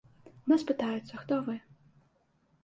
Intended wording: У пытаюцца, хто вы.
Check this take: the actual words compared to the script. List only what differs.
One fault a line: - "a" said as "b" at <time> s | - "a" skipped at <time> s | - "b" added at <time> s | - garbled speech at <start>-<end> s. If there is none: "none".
- "нас" added at 0.5 s